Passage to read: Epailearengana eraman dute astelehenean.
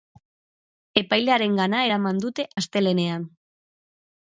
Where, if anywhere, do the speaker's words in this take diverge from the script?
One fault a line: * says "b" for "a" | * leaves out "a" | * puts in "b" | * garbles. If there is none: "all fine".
all fine